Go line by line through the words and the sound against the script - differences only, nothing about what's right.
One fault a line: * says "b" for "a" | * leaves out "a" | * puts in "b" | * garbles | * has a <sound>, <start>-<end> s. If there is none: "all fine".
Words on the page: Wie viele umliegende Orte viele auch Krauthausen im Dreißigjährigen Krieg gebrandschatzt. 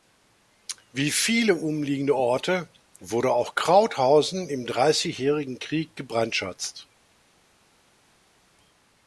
* says "wurde" for "viele"